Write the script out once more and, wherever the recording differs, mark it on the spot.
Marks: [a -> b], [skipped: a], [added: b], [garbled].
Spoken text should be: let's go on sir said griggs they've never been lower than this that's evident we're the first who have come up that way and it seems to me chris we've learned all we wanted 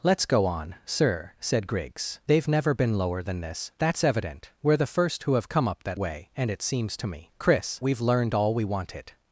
let's go on sir said griggs they've never been lower than this that's evident we're the first who have come up that way and it seems to me chris we've learned all we wanted